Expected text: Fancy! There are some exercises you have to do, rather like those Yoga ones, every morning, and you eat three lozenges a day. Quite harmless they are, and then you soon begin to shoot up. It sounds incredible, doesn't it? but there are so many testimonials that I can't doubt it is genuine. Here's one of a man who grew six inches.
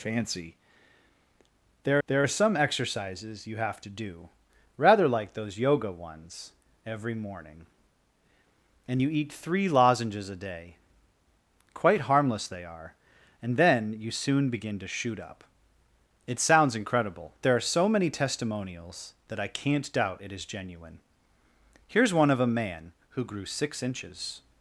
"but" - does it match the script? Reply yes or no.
no